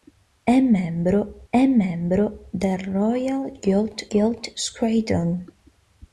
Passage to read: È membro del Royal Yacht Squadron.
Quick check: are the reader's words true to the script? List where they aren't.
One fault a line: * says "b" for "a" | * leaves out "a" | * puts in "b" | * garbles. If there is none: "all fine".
* puts in "è membro"
* puts in "Yacht"